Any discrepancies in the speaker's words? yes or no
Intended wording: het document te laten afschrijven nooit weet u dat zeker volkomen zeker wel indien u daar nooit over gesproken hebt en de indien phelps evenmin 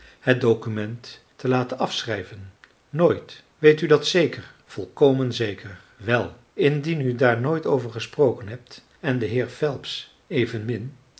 yes